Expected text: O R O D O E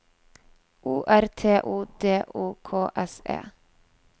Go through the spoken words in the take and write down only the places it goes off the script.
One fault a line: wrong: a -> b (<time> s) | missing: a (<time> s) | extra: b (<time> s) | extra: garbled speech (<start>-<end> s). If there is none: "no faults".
extra: T (1.3 s)
extra: K S (2.6 s)